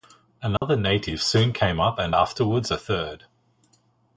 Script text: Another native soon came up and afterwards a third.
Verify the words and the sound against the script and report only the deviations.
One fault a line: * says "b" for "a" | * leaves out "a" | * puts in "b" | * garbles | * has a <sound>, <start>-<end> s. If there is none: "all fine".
* has a dropout, 0.6-0.6 s